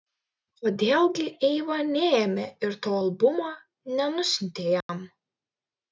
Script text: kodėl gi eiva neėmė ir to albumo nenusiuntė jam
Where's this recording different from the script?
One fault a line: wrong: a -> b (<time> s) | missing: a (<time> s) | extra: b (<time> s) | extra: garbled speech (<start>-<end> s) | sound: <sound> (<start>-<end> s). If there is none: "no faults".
sound: dropout (4.8-4.9 s)